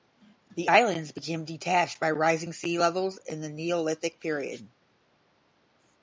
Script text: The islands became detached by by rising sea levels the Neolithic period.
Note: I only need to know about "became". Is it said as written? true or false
true